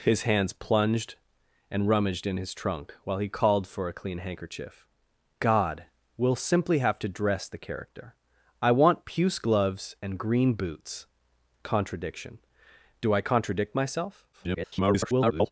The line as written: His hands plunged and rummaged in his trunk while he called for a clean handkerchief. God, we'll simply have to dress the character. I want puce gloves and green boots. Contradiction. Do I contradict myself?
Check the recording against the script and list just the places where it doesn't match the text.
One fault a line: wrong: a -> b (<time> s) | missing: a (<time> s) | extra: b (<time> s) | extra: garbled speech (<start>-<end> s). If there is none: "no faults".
extra: garbled speech (14.3-15.5 s)